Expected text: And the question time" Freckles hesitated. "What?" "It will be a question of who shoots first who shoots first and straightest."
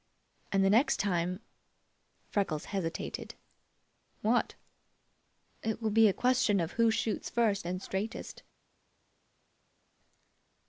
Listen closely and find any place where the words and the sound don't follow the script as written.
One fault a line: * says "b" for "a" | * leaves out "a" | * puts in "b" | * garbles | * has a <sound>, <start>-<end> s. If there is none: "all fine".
* says "next" for "question"
* leaves out "who shoots first"